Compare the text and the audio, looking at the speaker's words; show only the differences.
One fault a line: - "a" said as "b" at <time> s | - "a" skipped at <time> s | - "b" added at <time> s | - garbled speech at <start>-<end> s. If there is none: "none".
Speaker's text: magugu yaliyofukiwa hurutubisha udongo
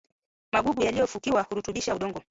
none